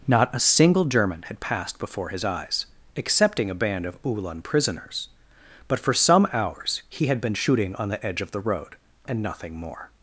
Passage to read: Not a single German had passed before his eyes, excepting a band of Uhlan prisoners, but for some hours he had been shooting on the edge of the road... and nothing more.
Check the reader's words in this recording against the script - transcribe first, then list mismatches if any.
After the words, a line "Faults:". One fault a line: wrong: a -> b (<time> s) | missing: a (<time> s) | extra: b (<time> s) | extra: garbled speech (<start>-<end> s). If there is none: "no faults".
Not a single German had passed before his eyes, excepting a band of Uhlan prisoners, but for some hours he had been shooting on the edge of the road... and nothing more.
Faults:
no faults